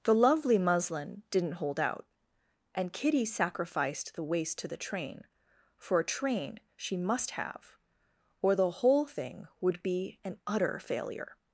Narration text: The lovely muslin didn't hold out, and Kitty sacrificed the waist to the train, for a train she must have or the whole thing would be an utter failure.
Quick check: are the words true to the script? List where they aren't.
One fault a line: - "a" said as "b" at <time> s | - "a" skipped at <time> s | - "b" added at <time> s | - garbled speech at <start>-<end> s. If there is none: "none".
none